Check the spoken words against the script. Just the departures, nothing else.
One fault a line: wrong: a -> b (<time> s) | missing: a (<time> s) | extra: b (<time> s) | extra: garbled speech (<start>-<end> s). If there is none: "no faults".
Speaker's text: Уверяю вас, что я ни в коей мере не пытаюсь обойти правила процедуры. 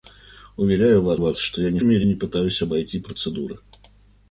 extra: вас (1.2 s)
missing: в коей (1.8 s)
missing: правила (3.0 s)